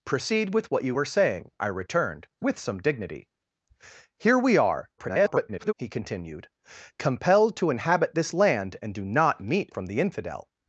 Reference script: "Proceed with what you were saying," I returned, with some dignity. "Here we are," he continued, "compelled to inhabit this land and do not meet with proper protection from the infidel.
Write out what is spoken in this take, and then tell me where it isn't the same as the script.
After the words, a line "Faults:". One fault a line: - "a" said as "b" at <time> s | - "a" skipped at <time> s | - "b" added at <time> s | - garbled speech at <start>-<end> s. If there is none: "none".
"Proceed with what you were saying," I returned, with some dignity. "Here we are," [garbled] he continued, "compelled to inhabit this land and do not meet from the infidel.
Faults:
- garbled speech at 5.0-5.7 s
- "with proper protection" skipped at 9.7 s